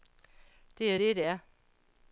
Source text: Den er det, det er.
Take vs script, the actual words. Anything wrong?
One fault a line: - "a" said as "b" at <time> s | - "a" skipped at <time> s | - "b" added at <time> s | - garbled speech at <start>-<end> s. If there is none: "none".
- "Den" said as "Det" at 0.8 s